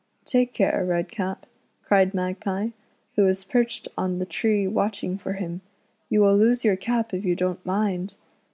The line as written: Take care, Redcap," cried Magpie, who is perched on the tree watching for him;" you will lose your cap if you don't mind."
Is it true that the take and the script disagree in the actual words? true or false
true